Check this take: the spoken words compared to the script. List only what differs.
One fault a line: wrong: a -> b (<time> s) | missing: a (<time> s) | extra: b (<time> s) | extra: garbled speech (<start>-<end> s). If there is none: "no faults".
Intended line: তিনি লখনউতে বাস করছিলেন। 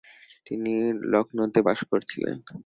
no faults